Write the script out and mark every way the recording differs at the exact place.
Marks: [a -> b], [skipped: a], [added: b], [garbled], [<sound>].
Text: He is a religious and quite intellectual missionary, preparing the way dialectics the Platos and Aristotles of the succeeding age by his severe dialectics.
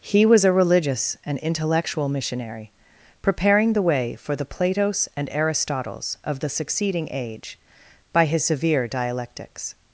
He [is -> was] a religious and [skipped: quite] intellectual missionary, preparing the way [dialectics -> for] the Platos and Aristotles of the succeeding age by his severe dialectics.